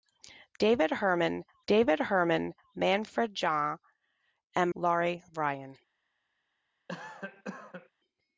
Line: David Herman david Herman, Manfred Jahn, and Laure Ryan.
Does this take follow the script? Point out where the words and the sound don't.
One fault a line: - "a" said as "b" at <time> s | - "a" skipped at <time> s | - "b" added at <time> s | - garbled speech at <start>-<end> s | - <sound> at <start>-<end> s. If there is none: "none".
- cough at 6.9-7.9 s